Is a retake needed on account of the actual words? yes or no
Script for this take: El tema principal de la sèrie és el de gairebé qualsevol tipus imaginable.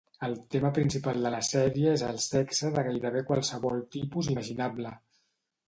yes